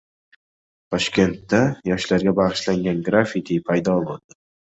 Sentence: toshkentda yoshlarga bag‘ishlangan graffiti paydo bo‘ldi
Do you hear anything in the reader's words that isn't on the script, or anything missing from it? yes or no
no